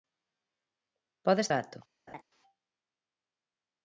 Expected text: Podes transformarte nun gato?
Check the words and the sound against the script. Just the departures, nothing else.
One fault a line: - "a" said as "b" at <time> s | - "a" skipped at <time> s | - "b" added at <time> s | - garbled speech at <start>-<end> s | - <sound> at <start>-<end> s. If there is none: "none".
- "transformarte nun" skipped at 1.5 s
- laugh at 2.1-2.2 s